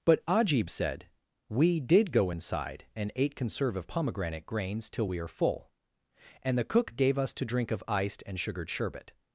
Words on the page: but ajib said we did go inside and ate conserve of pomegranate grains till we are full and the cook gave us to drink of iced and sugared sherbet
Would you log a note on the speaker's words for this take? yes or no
no